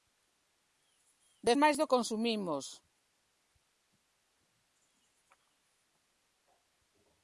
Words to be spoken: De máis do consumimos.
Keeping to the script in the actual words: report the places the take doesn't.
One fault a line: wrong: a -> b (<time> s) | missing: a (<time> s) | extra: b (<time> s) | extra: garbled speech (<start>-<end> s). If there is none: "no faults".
no faults